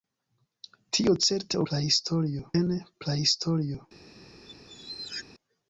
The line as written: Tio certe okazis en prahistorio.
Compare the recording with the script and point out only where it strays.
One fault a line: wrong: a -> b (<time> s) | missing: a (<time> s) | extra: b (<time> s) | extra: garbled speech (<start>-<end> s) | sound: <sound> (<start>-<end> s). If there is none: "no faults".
wrong: okazis -> prahistorio (1.7 s)
sound: squeak (4.4-5.2 s)